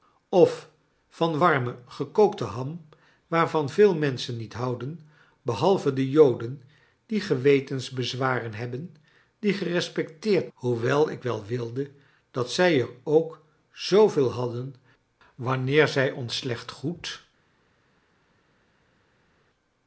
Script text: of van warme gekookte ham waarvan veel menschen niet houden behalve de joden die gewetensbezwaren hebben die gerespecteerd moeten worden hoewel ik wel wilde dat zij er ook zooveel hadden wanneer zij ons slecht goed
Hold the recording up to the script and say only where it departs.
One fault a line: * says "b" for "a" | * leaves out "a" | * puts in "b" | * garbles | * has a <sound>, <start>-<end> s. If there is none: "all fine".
* leaves out "moeten worden"